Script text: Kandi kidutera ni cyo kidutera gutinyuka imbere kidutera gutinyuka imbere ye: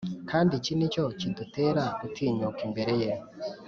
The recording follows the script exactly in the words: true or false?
false